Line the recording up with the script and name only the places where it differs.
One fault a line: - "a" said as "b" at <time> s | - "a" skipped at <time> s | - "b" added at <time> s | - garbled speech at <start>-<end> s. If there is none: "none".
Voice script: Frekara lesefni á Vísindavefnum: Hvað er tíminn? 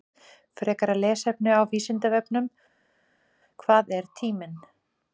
none